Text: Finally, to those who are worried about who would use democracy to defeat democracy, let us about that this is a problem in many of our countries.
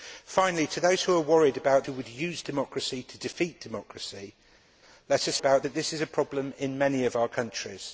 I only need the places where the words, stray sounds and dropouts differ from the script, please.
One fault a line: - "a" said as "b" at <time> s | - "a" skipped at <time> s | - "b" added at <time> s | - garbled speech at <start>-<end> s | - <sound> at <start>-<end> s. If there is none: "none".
none